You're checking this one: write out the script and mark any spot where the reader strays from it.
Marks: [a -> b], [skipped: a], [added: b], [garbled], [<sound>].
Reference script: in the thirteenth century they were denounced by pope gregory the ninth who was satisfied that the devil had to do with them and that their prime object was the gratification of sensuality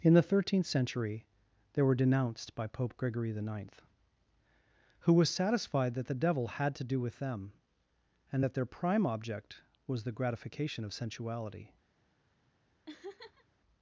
in the thirteenth century they were denounced by pope gregory the ninth who was satisfied that the devil had to do with them and that their prime object was the gratification of sensuality [laugh]